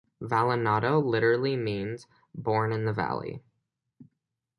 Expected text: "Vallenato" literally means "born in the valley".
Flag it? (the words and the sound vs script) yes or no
no